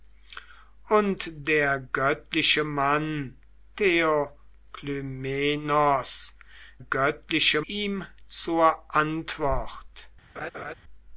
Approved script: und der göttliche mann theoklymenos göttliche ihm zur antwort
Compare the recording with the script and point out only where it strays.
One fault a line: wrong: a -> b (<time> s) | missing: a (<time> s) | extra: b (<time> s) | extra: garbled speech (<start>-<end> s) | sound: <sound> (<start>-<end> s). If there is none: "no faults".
sound: laugh (10.4-10.7 s)